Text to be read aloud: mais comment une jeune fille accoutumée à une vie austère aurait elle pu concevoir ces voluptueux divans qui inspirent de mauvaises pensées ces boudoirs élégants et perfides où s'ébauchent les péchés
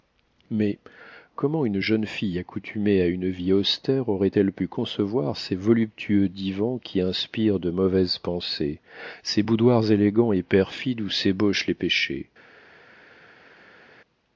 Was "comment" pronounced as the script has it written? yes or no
yes